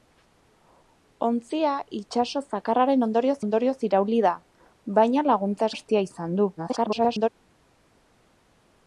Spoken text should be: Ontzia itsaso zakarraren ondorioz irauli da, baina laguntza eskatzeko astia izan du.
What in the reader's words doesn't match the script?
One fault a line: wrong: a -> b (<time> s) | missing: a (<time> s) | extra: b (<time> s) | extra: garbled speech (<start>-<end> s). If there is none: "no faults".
extra: ondorioz (3.4 s)
missing: eskatzeko (5.7 s)
extra: garbled speech (6.6-7.3 s)